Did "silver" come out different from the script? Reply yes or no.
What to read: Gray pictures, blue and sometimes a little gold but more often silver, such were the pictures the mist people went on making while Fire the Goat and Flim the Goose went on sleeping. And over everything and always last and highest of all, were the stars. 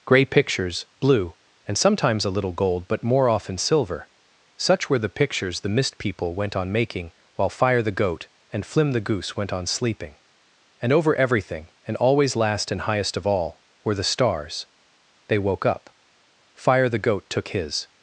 no